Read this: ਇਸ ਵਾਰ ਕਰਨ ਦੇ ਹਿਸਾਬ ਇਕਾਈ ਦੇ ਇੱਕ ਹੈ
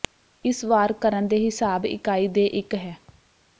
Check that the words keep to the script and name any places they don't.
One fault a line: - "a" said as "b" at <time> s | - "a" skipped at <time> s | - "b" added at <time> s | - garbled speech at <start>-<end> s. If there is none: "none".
none